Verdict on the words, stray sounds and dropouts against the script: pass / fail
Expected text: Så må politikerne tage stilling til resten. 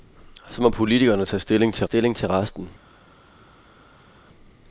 fail